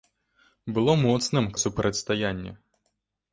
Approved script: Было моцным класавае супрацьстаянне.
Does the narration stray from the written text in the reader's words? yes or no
yes